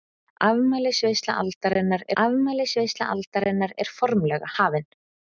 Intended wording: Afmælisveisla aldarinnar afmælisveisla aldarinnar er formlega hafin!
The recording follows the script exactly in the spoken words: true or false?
true